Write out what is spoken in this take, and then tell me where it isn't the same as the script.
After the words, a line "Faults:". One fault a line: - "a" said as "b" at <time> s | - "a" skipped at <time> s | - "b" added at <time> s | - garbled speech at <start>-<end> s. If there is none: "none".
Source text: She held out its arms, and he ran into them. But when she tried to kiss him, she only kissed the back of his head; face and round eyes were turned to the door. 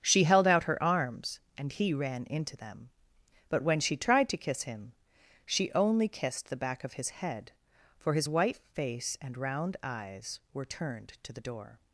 She held out her arms, and he ran into them. But when she tried to kiss him, she only kissed the back of his head; for his white face and round eyes were turned to the door.
Faults:
- "its" said as "her" at 0.6 s
- "for his white" added at 8.0 s